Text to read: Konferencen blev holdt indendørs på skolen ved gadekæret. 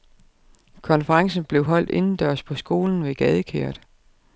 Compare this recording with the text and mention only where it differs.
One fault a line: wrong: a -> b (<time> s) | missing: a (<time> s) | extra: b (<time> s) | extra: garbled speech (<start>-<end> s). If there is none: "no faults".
no faults